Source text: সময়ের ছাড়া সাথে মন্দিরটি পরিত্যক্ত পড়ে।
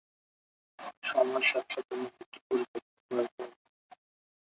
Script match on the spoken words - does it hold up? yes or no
no